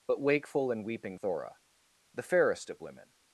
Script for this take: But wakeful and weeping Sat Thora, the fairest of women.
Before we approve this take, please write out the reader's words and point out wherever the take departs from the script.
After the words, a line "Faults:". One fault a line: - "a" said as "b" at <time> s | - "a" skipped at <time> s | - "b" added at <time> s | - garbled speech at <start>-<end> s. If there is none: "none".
But wakeful and weeping Thora, the fairest of women.
Faults:
- "Sat" skipped at 1.2 s